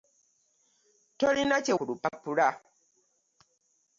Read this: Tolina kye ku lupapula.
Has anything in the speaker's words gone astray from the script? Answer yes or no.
no